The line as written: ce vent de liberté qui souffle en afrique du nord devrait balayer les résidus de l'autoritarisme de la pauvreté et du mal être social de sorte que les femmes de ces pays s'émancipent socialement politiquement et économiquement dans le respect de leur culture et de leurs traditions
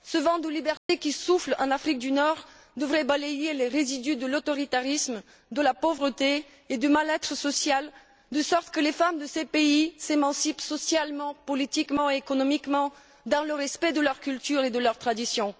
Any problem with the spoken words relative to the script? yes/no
no